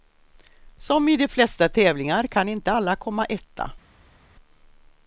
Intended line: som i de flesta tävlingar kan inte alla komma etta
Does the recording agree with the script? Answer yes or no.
yes